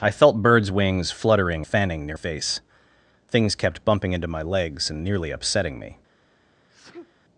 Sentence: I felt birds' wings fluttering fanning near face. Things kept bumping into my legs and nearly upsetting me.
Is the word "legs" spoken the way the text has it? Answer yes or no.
yes